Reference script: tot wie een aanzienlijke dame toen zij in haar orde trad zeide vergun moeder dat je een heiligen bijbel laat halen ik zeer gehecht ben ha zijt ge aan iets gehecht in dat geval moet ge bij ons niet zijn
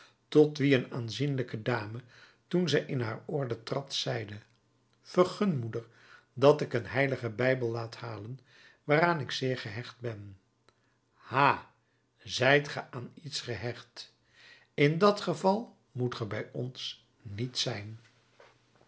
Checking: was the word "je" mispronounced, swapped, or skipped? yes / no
yes